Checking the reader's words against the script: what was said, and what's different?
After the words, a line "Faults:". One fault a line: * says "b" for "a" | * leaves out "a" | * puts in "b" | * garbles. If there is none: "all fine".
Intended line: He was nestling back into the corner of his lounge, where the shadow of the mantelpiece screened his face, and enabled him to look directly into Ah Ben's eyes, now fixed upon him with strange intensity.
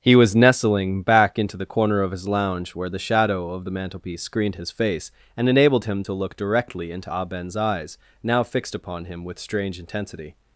He was nestling back into the corner of his lounge, where the shadow of the mantelpiece screened his face, and enabled him to look directly into Ah Ben's eyes, now fixed upon him with strange intensity.
Faults:
all fine